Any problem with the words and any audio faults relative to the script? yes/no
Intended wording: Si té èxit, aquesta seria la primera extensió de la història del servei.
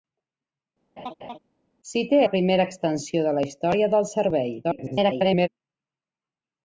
yes